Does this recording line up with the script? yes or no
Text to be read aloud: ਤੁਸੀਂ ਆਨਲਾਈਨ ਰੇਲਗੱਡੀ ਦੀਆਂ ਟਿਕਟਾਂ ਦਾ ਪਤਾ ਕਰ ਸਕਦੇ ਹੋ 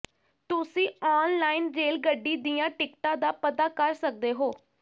yes